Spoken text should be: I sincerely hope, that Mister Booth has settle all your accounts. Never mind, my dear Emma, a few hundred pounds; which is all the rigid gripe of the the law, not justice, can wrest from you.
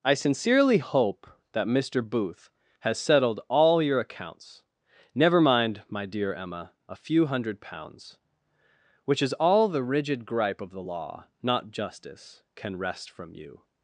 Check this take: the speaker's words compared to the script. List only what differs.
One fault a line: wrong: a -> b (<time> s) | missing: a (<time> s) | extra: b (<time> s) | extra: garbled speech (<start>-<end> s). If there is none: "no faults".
wrong: settle -> settled (3.0 s)
missing: the (10.8 s)